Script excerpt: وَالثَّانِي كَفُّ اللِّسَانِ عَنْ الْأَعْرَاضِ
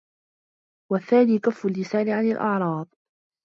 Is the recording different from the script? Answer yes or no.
no